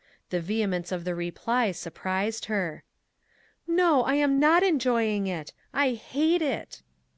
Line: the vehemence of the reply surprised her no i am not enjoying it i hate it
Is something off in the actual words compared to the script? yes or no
no